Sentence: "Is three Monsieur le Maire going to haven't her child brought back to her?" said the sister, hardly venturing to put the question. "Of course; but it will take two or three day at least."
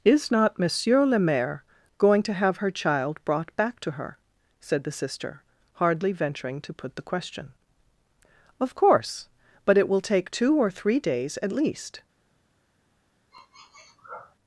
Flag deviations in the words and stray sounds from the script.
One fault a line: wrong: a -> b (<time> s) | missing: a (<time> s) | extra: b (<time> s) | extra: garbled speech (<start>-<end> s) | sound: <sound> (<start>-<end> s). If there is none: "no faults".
wrong: three -> not (0.3 s)
wrong: haven't -> have (2.3 s)
wrong: day -> days (11.0 s)
sound: sniff (13.3-14.4 s)